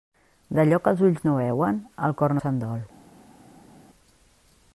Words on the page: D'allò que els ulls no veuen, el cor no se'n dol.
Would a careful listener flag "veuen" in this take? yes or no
no